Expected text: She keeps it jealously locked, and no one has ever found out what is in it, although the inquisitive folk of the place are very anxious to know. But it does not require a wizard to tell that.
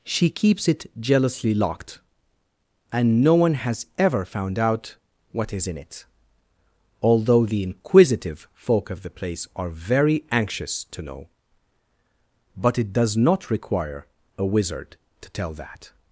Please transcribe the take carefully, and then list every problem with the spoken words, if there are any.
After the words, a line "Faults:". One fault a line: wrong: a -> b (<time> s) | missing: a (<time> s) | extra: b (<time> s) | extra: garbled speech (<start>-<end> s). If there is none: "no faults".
She keeps it jealously locked, and no one has ever found out what is in it, although the inquisitive folk of the place are very anxious to know. But it does not require a wizard to tell that.
Faults:
no faults